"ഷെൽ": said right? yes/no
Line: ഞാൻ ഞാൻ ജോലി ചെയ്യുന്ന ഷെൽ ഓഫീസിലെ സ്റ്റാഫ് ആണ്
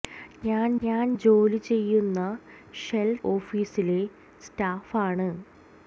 yes